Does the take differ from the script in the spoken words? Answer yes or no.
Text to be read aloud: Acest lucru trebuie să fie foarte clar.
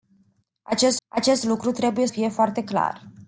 yes